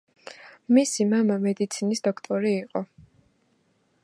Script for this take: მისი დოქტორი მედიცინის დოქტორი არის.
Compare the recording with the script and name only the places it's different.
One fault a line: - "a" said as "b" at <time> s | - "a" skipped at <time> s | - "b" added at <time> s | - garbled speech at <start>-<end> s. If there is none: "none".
- "დოქტორი" said as "მამა" at 1.1 s
- "არის" said as "იყო" at 2.6 s